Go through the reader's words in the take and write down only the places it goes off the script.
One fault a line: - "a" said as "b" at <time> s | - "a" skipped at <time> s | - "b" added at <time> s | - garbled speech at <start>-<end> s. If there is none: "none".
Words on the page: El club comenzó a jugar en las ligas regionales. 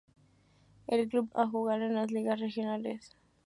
- "comenzó" skipped at 1.3 s